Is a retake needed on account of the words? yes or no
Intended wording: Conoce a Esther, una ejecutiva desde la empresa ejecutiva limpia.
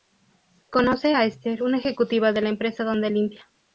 yes